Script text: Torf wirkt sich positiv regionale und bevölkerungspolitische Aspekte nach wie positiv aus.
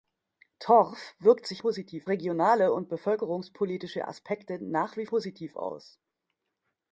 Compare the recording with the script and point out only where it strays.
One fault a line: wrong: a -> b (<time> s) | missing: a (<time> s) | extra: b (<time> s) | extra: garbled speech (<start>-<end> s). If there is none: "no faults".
no faults